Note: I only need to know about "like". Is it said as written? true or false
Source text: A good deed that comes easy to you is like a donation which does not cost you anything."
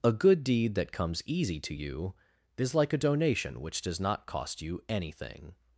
true